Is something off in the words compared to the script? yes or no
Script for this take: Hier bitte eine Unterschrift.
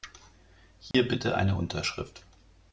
no